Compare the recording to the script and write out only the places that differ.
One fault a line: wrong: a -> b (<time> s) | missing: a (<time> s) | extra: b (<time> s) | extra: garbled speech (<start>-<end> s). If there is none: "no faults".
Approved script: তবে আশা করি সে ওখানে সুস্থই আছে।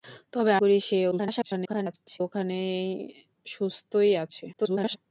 missing: আশা (0.5 s)
extra: garbled speech (1.1-2.2 s)
extra: garbled speech (4.5-5.0 s)